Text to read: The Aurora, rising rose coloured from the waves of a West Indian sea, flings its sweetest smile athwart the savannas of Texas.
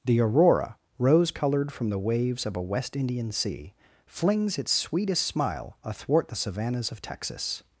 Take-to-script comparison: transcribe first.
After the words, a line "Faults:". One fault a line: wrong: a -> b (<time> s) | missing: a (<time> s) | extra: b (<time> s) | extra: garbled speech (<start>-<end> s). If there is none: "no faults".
The Aurora, rose coloured from the waves of a West Indian sea, flings its sweetest smile athwart the savannas of Texas.
Faults:
missing: rising (0.8 s)